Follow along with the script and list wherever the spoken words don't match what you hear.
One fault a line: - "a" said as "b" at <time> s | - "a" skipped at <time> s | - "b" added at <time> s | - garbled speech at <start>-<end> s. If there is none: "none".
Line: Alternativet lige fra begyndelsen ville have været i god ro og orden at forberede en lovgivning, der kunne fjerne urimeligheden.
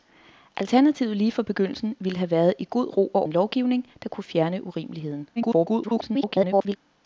- "orden at forberede" skipped at 3.3 s
- garbled speech at 5.4-6.8 s